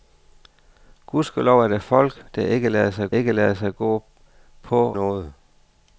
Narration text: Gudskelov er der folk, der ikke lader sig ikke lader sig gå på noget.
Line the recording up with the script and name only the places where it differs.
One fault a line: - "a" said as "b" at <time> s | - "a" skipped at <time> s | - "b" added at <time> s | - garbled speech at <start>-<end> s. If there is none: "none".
none